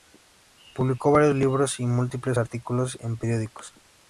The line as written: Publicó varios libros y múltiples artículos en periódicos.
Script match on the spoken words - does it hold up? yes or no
yes